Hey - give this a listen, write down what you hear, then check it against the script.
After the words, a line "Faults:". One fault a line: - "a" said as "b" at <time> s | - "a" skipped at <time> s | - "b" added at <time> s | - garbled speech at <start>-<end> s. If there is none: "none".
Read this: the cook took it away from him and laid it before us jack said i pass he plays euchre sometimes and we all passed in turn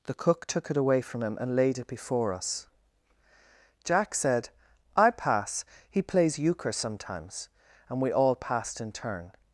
the cook took it away from him and laid it before us jack said i pass he plays euchre sometimes and we all passed in turn
Faults:
none